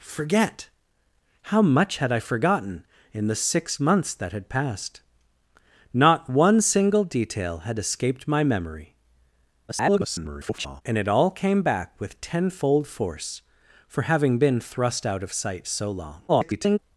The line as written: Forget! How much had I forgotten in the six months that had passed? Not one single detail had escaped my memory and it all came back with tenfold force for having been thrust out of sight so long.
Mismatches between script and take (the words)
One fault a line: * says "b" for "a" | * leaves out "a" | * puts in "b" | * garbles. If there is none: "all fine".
* garbles
* garbles